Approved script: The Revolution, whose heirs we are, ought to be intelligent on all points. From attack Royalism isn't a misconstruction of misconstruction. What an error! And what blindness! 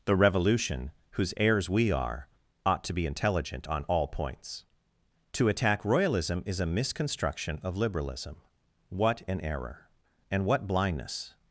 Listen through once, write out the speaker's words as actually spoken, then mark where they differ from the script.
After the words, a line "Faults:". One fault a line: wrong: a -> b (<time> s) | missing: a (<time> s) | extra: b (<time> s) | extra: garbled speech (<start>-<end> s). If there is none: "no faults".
The Revolution, whose heirs we are, ought to be intelligent on all points. To attack Royalism is a misconstruction of liberalism. What an error! And what blindness!
Faults:
wrong: From -> To (5.3 s)
wrong: isn't -> is (6.4 s)
wrong: misconstruction -> liberalism (7.8 s)